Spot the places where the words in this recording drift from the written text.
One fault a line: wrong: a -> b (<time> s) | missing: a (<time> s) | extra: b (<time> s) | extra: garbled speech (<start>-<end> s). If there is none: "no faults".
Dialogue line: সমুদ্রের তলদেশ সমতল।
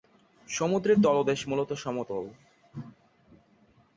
extra: মূলত (1.5 s)